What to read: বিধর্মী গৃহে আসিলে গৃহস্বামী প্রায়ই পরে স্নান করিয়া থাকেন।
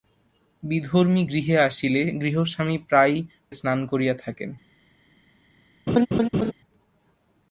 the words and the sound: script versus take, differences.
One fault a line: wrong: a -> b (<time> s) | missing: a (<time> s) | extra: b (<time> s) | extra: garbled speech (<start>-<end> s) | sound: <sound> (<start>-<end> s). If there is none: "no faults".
missing: পরে (3.2 s)
sound: laugh (5.9-6.5 s)